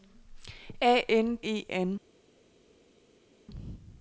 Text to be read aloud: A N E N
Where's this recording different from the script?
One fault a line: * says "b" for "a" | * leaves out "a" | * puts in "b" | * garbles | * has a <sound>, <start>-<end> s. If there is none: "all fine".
all fine